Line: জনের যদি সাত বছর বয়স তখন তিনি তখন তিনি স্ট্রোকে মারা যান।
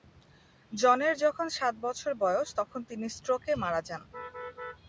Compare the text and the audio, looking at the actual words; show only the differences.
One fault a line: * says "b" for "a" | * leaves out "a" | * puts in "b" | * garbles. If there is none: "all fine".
* says "যখন" for "যদি"
* leaves out "তখন তিনি"